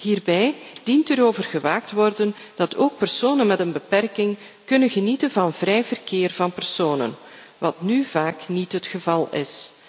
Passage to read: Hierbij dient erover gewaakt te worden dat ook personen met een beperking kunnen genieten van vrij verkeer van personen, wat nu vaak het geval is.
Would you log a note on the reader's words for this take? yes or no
yes